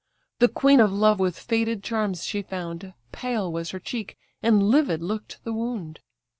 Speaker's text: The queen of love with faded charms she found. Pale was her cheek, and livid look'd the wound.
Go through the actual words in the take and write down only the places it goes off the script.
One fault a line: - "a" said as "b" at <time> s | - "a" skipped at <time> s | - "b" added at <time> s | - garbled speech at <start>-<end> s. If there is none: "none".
none